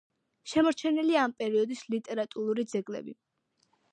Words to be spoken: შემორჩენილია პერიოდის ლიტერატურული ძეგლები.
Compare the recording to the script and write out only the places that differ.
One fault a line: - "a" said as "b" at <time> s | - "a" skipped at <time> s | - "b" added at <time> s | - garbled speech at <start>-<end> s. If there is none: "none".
- "ამ" added at 1.2 s